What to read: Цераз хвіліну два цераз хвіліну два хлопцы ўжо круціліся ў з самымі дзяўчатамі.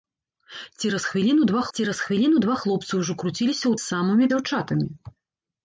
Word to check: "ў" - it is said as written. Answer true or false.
true